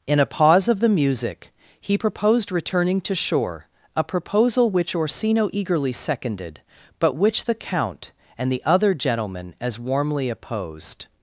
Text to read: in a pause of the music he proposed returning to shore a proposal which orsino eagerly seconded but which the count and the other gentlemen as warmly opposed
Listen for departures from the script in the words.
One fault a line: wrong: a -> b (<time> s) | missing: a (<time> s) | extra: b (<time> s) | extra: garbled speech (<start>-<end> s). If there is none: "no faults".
no faults